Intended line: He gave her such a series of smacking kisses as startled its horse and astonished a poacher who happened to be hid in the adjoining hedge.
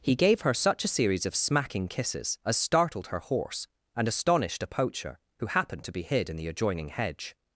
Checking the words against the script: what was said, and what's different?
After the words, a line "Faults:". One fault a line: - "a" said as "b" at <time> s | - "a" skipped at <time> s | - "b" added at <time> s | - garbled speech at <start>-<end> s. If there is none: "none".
He gave her such a series of smacking kisses as startled her horse and astonished a poacher who happened to be hid in the adjoining hedge.
Faults:
- "its" said as "her" at 3.1 s